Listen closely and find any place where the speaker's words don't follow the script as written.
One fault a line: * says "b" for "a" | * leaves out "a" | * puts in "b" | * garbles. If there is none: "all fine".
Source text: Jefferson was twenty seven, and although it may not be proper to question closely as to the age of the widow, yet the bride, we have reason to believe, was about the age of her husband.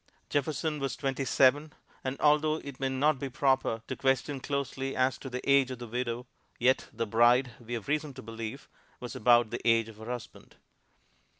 all fine